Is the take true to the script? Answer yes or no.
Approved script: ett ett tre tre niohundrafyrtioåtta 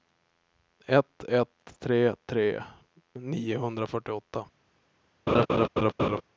yes